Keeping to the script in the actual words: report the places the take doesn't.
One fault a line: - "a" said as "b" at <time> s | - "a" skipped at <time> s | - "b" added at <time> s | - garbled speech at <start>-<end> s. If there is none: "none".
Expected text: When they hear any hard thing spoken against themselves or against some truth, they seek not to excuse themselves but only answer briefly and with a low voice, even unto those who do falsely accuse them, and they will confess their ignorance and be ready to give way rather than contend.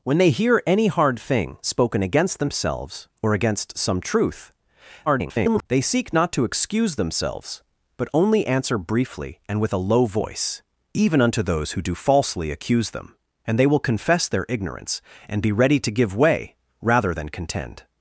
- garbled speech at 5.1-5.7 s